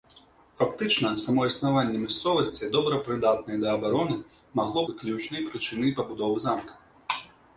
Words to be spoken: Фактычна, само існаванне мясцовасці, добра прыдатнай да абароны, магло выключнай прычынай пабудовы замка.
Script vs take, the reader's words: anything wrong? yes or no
no